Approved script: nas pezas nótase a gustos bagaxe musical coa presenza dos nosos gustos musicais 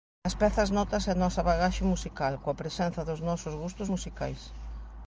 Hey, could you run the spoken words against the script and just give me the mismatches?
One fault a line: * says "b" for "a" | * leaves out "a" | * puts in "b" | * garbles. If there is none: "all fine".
* says "nosa" for "gustos"